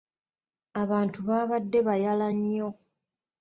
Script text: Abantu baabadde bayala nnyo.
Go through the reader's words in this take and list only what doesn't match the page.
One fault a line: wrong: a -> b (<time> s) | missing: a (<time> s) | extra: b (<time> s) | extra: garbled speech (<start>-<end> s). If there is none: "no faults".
no faults